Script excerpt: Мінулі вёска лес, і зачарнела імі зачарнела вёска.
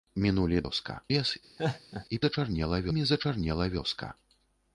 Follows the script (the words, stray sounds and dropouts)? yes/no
no